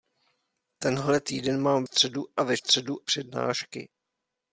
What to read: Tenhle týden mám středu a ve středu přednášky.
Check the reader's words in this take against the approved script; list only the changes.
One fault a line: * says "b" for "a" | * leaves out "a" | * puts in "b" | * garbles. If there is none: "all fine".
all fine